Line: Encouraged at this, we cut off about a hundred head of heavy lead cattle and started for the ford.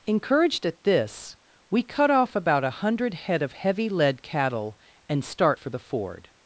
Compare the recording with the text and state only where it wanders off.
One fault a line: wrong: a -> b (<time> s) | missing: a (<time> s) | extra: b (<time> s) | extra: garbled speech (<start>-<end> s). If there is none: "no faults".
wrong: started -> start (5.2 s)